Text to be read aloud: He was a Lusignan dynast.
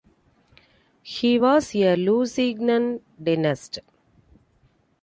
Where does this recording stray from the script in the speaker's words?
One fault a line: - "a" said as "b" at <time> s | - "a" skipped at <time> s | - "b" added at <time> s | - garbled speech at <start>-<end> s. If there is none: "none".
none